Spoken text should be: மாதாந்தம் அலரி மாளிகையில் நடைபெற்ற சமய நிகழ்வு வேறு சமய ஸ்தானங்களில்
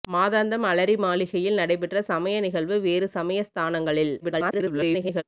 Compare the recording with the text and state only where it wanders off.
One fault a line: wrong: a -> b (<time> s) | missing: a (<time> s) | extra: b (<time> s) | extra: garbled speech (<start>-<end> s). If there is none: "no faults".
extra: garbled speech (4.2-5.2 s)